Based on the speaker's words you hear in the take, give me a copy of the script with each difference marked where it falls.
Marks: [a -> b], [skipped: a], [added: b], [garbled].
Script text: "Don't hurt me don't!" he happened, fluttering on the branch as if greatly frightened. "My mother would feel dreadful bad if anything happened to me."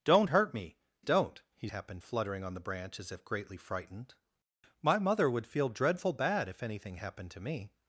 "Don't hurt me don't!" he happened, fluttering on the branch as if greatly frightened. "My mother would feel dreadful bad if anything happened to me."